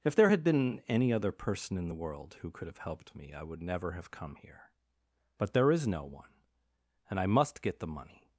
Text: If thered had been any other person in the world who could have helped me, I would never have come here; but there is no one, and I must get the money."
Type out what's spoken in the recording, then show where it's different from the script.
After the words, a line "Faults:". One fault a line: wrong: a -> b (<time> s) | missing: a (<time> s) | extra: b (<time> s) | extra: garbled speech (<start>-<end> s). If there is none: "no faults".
If there had been any other person in the world who could have helped me, I would never have come here; but there is no one, and I must get the money."
Faults:
wrong: thered -> there (0.1 s)